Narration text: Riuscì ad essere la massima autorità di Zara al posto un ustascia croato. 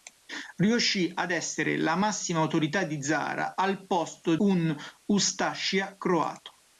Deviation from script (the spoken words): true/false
false